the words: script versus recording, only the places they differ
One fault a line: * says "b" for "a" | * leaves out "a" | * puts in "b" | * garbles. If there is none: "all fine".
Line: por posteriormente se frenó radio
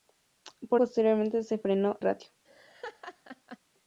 all fine